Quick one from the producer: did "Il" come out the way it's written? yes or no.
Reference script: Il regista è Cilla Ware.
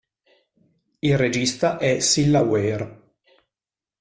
yes